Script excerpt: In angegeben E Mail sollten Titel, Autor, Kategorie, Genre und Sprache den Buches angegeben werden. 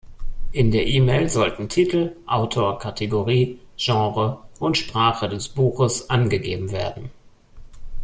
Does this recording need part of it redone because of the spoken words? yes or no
yes